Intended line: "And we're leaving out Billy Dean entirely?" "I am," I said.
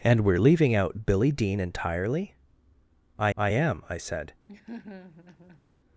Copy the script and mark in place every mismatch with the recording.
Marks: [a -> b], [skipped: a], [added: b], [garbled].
"And we're leaving out Billy Dean entirely?" "I [added: I] am," I said.